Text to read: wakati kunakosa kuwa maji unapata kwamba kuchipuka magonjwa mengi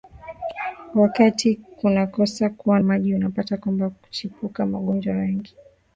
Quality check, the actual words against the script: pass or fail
pass